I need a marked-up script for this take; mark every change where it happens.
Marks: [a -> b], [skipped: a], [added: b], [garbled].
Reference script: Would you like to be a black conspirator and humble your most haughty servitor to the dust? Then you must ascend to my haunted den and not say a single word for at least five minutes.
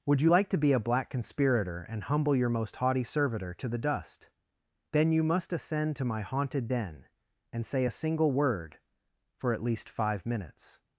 Would you like to be a black conspirator and humble your most haughty servitor to the dust? Then you must ascend to my haunted den and [skipped: not] say a single word for at least five minutes.